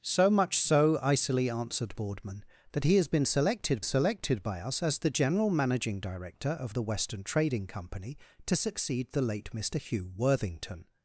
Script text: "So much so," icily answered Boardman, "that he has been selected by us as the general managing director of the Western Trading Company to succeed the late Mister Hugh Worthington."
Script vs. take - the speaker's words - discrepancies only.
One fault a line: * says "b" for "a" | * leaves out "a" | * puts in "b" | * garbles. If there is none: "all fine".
* puts in "selected"